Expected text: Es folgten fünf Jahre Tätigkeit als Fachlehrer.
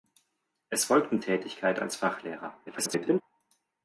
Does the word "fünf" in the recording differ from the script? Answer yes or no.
yes